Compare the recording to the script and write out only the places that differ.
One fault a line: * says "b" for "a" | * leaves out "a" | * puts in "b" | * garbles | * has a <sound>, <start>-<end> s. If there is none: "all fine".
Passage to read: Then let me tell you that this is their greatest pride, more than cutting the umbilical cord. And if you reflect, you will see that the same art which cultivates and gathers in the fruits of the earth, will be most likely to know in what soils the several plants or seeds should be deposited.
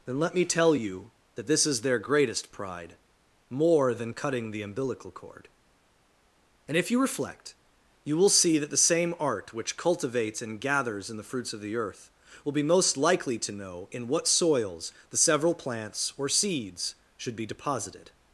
all fine